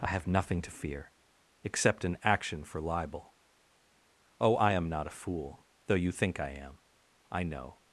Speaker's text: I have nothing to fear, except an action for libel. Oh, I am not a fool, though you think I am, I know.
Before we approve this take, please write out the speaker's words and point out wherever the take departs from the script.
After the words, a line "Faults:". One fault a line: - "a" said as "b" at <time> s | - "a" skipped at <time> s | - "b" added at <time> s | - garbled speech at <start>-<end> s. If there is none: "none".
I have nothing to fear, except an action for libel. Oh, I am not a fool, though you think I am, I know.
Faults:
none